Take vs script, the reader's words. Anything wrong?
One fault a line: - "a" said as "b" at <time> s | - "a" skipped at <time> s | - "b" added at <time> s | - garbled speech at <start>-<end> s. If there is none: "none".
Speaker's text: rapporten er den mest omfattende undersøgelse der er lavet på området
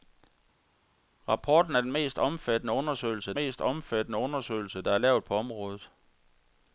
- "mest omfattende undersøgelse" added at 3.3 s